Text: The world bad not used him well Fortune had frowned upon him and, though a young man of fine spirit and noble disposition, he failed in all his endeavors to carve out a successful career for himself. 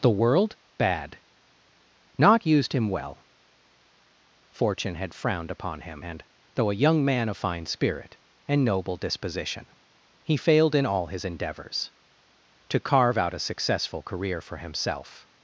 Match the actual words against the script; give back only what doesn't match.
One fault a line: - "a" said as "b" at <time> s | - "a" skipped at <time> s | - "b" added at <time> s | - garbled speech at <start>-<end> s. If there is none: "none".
none